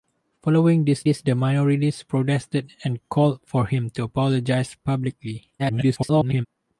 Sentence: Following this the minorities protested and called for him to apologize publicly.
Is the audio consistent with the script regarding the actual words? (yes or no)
no